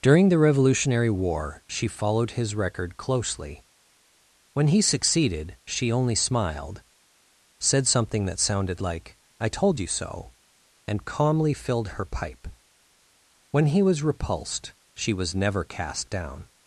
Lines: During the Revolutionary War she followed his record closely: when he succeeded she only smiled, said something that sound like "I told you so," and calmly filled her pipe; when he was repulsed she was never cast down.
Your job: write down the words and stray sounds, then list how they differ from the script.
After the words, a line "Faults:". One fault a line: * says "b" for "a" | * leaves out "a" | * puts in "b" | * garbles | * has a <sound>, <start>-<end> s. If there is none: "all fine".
During the Revolutionary War she followed his record closely: when he succeeded she only smiled, said something that sounded like "I told you so," and calmly filled her pipe; when he was repulsed she was never cast down.
Faults:
* says "sounded" for "sound"